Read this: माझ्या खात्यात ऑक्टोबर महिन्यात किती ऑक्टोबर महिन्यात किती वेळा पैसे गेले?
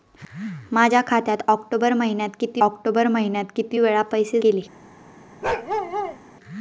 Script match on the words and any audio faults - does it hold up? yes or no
no